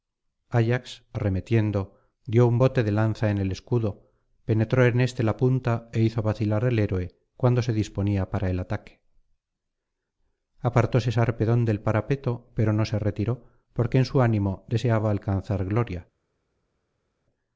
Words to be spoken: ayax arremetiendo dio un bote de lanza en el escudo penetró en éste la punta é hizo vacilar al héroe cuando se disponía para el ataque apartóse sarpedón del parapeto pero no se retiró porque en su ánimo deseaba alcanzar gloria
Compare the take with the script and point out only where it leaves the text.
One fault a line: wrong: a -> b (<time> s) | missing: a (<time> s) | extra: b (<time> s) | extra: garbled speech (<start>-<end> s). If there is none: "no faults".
no faults